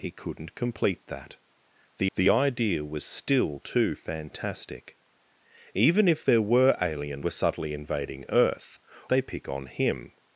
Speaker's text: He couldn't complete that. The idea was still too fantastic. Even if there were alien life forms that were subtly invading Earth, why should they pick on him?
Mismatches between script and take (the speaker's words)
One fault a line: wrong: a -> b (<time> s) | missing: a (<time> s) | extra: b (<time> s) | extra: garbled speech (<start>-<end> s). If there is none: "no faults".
extra: the (2.2 s)
missing: life forms that (7.2 s)
missing: why should (8.8 s)